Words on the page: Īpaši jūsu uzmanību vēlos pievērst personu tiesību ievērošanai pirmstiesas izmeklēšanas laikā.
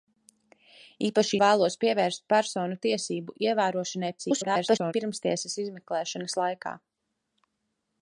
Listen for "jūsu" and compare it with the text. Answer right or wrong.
wrong